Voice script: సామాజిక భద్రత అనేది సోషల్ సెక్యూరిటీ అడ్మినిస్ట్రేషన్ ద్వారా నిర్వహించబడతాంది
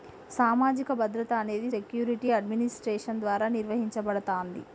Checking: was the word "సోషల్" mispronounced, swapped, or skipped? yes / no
yes